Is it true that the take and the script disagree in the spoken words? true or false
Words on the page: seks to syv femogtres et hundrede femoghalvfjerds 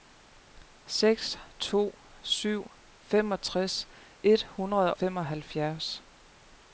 false